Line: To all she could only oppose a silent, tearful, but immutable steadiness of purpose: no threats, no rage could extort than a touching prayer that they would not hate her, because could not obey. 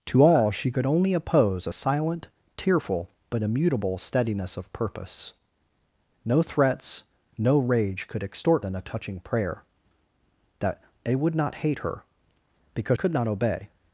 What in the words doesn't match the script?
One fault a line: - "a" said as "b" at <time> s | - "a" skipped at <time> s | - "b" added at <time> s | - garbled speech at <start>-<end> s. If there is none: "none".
none